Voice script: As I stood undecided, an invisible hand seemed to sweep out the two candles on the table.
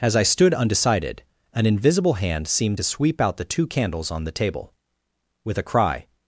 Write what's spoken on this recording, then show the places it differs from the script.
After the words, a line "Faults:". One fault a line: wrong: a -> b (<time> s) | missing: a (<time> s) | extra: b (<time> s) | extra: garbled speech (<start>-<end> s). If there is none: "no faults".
As I stood undecided, an invisible hand seemed to sweep out the two candles on the table. With a cry
Faults:
extra: With a cry (5.4 s)